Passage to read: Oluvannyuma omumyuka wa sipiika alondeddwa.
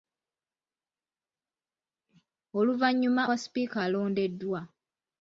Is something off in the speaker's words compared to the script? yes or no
yes